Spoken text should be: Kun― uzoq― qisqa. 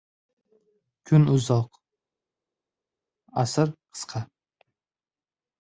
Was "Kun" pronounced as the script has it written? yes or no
yes